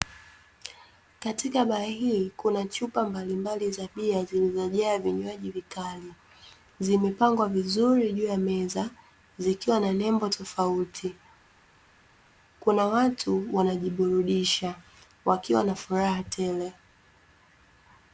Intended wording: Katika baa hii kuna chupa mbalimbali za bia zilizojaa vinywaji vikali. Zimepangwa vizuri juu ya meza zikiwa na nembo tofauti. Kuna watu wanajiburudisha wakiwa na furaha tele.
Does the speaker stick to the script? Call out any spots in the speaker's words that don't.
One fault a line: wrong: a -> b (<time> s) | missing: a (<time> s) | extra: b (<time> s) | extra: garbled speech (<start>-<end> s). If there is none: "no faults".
no faults